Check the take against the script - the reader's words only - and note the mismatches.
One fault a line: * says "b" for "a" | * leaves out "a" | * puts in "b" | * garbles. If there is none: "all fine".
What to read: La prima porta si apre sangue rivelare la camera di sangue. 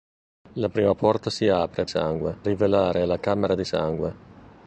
all fine